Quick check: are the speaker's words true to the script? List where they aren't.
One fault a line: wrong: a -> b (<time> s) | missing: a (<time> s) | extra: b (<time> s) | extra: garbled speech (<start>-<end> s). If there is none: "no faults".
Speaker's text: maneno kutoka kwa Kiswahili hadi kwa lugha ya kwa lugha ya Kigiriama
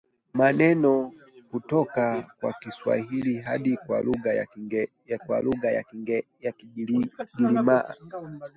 no faults